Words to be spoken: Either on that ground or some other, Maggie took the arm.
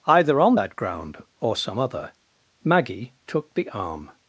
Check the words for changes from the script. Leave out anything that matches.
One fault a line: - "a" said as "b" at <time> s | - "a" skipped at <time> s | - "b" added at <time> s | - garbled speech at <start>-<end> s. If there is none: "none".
none